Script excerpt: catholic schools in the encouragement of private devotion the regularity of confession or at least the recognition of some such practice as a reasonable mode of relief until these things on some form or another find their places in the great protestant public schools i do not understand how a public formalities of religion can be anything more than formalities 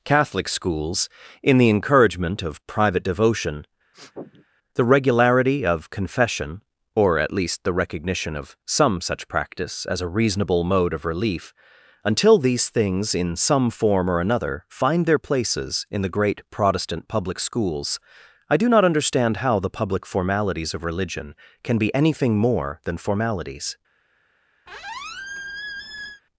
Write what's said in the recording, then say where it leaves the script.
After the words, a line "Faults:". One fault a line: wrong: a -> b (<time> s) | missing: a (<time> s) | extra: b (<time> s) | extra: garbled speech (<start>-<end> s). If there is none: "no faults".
catholic schools in the encouragement of private devotion the regularity of confession or at least the recognition of some such practice as a reasonable mode of relief until these things in some form or another find their places in the great protestant public schools i do not understand how the public formalities of religion can be anything more than formalities
Faults:
wrong: on -> in (13.1 s)
wrong: a -> the (19.6 s)